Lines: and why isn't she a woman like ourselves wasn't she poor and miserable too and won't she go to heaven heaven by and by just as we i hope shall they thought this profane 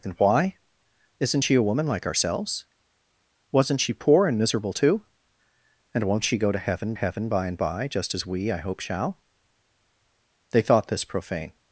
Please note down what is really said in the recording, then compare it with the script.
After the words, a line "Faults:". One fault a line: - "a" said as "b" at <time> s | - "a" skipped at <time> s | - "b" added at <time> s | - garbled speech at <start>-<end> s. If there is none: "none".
and why isn't she a woman like ourselves wasn't she poor and miserable too and won't she go to heaven heaven by and by just as we i hope shall they thought this profane
Faults:
none